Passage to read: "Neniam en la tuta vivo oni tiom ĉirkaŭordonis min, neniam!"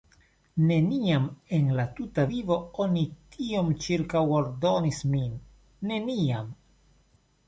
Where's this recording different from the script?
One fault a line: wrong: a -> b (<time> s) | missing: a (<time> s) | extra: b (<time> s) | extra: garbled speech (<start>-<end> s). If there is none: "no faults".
no faults